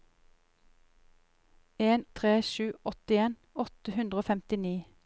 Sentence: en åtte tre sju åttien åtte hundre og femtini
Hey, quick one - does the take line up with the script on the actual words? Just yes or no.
no